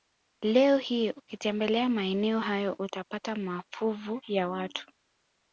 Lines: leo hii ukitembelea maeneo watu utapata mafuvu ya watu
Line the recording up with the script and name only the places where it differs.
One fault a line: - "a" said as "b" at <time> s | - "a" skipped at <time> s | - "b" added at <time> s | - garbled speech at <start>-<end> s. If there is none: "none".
- "watu" said as "hayo" at 2.4 s